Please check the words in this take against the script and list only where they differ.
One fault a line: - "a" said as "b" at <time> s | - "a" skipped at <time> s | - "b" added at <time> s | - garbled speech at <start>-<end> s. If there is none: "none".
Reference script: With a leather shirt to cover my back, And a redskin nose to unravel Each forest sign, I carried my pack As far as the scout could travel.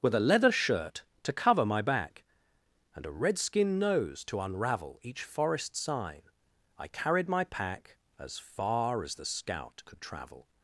none